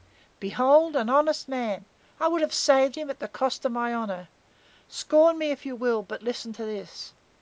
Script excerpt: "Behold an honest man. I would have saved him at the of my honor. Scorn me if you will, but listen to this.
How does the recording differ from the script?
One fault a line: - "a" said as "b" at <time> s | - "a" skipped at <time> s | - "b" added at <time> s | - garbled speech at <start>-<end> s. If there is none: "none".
- "cost" added at 3.3 s